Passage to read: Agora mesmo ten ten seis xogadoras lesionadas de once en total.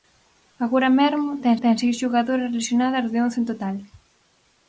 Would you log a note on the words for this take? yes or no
no